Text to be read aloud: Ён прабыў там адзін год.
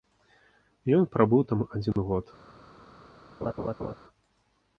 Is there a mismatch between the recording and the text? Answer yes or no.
no